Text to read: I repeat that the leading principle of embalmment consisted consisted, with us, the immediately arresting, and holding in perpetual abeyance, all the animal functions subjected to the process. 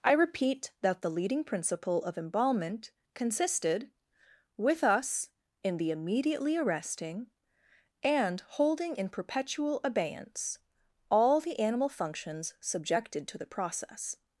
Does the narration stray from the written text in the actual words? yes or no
yes